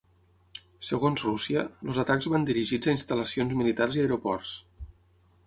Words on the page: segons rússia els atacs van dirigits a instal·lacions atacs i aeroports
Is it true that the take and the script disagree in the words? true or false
true